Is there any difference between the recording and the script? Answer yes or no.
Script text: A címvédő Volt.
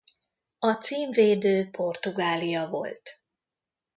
yes